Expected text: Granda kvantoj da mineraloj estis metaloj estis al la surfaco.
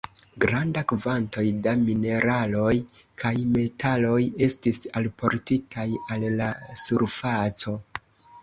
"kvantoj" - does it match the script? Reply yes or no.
yes